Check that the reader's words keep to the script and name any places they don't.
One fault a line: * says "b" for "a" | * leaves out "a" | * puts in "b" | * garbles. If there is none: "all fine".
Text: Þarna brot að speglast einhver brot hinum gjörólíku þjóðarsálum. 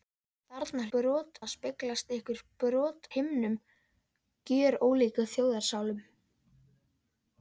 all fine